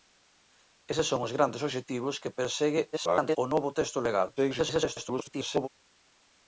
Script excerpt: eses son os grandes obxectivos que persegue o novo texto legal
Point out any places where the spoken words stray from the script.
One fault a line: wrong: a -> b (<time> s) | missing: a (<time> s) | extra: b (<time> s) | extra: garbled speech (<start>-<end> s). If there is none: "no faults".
extra: garbled speech (2.9-3.4 s)
extra: garbled speech (4.4-5.7 s)